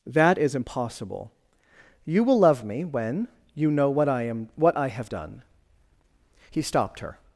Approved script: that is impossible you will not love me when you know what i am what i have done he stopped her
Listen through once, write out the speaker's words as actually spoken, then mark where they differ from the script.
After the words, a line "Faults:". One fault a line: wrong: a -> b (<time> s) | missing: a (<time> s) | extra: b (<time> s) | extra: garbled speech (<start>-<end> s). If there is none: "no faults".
that is impossible you will love me when you know what i am what i have done he stopped her
Faults:
missing: not (2.4 s)